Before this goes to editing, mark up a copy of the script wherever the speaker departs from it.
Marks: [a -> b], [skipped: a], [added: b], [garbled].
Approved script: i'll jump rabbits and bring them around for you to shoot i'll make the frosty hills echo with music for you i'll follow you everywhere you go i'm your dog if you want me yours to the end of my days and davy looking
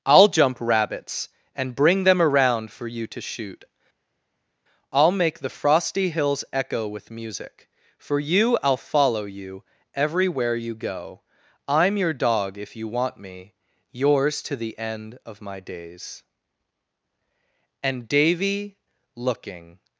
i'll jump rabbits and bring them around for you to shoot i'll make the frosty hills echo with music for you i'll follow you everywhere you go i'm your dog if you want me yours to the end of my days and davy looking